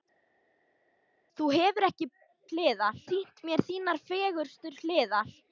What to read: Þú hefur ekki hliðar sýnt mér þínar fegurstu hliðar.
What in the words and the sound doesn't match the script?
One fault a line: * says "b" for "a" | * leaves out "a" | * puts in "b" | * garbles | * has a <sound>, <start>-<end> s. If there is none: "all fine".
all fine